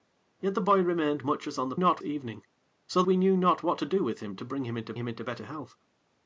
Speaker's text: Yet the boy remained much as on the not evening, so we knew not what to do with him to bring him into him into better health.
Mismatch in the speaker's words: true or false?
false